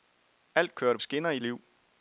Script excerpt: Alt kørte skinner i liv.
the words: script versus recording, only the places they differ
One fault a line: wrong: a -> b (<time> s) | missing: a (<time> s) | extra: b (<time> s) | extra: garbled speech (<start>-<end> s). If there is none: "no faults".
no faults